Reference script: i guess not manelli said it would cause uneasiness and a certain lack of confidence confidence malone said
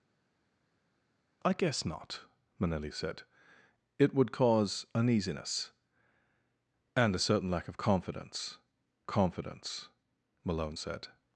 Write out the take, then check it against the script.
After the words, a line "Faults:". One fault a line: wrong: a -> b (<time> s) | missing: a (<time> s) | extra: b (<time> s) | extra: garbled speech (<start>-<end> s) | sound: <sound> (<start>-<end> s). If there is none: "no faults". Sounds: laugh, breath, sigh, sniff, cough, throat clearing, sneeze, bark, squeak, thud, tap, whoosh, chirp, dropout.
i guess not manelli said it would cause uneasiness and a certain lack of confidence confidence malone said
Faults:
no faults